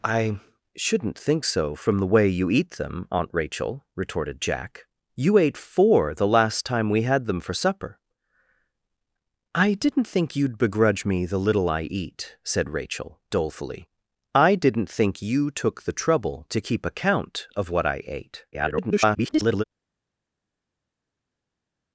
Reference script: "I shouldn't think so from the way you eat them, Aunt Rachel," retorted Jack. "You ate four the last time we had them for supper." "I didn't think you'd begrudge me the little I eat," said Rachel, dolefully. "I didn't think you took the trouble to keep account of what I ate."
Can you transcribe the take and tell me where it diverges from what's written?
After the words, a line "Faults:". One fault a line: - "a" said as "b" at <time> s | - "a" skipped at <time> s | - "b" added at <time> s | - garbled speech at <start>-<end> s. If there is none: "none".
"I shouldn't think so from the way you eat them, Aunt Rachel," retorted Jack. "You ate four the last time we had them for supper." "I didn't think you'd begrudge me the little I eat," said Rachel, dolefully. "I didn't think you took the trouble to keep account of what I ate." [garbled]
Faults:
- garbled speech at 18.5-19.6 s